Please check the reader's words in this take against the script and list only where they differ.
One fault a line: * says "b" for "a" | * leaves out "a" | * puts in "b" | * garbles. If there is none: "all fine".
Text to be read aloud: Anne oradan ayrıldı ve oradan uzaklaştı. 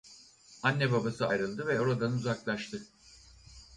* says "babası" for "oradan"